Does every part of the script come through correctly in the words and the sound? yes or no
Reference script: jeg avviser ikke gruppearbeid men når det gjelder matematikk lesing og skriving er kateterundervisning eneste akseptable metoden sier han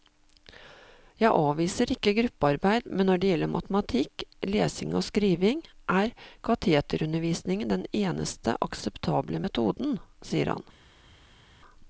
no